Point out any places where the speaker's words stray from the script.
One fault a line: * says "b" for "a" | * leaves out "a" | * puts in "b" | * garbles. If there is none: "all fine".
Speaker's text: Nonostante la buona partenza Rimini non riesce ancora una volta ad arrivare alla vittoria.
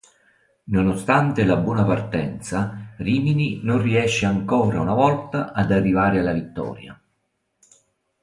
all fine